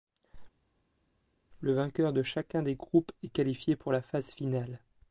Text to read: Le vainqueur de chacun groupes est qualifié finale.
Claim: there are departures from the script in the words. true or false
true